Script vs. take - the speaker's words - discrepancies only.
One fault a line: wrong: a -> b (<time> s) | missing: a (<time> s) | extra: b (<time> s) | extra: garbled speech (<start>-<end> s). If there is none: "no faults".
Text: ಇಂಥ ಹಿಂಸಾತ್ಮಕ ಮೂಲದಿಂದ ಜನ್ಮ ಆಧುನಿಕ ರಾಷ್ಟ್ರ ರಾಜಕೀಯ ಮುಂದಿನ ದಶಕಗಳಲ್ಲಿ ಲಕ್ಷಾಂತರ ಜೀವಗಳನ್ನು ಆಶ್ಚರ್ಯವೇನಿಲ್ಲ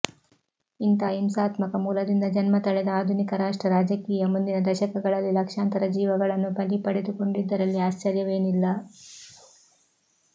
extra: ತಳೆದ (2.6 s)
extra: ಬಲಿ ಪಡೆದುಕೊಂಡಿದ್ದರಲ್ಲಿ (6.6 s)